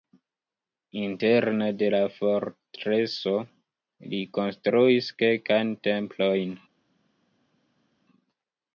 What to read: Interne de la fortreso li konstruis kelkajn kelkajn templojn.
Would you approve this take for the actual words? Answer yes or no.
no